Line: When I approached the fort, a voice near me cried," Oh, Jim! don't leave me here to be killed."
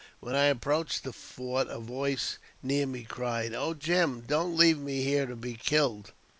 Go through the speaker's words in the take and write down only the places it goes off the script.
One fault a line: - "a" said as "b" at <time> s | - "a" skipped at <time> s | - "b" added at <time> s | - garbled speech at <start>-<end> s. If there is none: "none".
none